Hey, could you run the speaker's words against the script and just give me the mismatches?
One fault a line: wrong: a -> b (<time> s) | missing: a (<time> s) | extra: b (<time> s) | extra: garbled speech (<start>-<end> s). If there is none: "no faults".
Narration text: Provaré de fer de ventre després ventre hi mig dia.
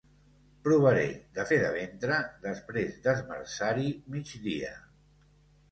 wrong: ventre -> d'esmerçar (3.1 s)